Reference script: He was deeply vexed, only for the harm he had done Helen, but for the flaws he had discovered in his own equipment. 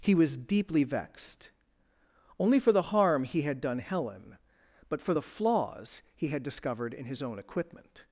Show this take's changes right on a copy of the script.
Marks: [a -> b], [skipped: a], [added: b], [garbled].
He was deeply vexed, only for the harm he had done Helen, but for the flaws he had discovered in his own equipment.